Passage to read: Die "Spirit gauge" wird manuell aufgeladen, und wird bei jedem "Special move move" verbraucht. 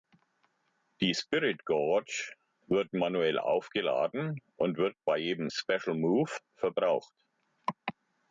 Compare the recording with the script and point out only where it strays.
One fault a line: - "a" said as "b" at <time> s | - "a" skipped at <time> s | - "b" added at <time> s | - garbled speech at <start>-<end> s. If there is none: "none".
- "move" skipped at 6.3 s